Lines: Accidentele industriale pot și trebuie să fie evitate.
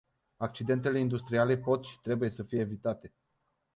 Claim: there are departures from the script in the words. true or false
false